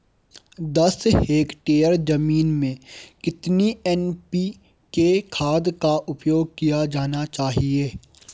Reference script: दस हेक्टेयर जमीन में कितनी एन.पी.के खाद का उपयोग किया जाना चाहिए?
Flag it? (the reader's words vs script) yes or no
no